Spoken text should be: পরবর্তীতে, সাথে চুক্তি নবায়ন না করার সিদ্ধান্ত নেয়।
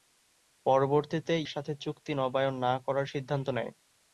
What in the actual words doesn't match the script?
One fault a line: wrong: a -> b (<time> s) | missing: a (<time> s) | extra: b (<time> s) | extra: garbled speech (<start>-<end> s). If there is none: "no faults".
no faults